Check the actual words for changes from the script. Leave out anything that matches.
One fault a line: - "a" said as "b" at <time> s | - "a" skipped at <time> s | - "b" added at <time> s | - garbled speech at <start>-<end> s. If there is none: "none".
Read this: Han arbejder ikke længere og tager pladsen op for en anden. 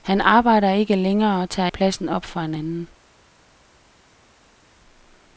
none